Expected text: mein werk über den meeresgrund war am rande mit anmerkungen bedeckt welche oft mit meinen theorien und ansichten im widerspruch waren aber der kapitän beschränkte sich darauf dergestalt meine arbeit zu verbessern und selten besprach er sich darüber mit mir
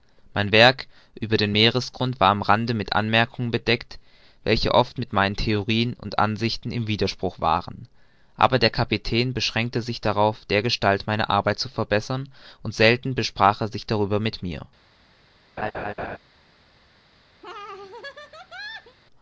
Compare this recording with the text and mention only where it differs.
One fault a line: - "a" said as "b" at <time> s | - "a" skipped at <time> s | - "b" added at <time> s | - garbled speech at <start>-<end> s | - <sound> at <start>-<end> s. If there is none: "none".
- laugh at 15.6-16.2 s
- laugh at 17.4-19.0 s